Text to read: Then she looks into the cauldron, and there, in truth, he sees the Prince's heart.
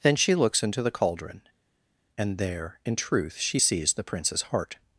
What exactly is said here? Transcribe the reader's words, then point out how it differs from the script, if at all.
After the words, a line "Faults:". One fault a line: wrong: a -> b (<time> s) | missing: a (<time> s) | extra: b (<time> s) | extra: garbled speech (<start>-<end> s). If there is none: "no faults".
Then she looks into the cauldron, and there, in truth, she sees the Prince's heart.
Faults:
wrong: he -> she (3.4 s)